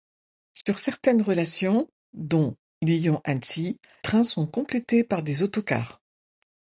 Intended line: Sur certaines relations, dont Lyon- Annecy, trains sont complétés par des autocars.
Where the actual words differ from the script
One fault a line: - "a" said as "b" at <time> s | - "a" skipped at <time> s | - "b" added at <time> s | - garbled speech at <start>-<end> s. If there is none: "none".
none